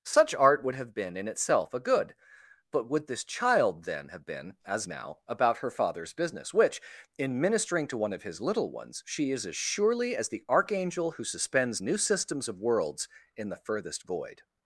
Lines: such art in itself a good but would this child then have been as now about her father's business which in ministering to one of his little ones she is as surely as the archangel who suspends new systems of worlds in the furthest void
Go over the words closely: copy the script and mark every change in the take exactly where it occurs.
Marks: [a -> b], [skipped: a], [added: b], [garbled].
such art [added: would have been] in itself a good but would this child then have been as now about her father's business which in ministering to one of his little ones she is as surely as the archangel who suspends new systems of worlds in the furthest void